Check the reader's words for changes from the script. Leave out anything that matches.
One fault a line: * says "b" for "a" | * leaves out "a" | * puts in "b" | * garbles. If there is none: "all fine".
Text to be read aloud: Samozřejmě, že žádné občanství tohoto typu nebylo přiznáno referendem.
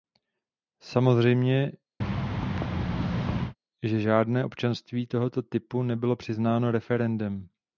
all fine